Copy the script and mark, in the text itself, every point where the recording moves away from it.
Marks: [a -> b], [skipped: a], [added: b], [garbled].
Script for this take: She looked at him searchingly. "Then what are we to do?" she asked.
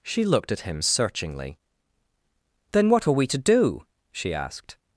She looked at him searchingly. "Then what are we to do?" she asked.